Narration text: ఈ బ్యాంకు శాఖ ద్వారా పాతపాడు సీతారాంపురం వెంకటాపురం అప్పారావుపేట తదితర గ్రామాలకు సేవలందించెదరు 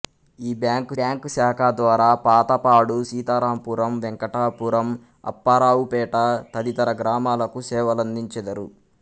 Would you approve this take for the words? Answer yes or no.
no